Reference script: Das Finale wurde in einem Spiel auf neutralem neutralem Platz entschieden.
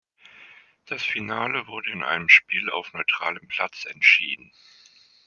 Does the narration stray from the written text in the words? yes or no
yes